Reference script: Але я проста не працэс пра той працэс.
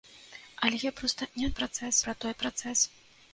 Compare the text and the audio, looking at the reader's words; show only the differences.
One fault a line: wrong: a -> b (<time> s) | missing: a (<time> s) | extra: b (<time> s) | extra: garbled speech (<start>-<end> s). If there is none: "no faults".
no faults